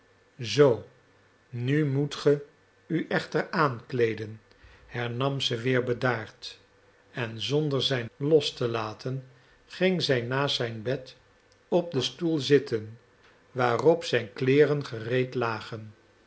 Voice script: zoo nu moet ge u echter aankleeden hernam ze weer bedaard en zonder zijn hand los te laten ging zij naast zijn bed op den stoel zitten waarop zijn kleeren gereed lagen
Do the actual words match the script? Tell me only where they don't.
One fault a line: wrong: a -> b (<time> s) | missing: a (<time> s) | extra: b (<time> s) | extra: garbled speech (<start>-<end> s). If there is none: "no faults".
missing: hand (8.1 s)